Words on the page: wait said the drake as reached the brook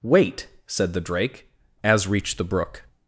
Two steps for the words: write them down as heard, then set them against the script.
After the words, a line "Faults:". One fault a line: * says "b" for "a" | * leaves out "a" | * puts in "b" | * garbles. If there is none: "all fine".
wait said the drake as reached the brook
Faults:
all fine